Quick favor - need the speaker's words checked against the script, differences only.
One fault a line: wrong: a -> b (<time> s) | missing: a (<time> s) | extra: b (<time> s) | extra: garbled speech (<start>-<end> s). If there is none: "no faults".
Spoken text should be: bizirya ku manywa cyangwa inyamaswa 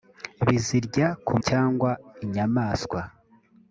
missing: manywa (1.3 s)